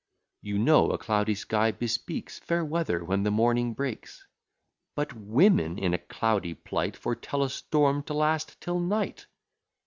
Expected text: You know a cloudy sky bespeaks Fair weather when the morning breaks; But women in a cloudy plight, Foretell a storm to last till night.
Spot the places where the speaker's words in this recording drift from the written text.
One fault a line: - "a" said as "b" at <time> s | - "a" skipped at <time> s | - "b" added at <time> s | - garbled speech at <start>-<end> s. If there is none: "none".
none